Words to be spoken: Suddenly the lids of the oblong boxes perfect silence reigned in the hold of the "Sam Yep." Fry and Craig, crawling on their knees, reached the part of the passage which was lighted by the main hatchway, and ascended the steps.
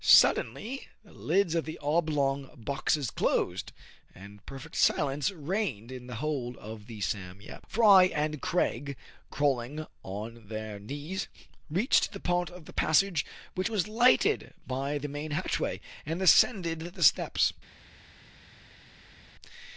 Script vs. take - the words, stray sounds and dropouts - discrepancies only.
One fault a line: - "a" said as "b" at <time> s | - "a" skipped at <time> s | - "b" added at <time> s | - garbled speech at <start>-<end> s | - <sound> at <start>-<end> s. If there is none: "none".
- "closed and" added at 3.1 s